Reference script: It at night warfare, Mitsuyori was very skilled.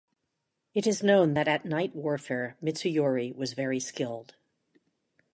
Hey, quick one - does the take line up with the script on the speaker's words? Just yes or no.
no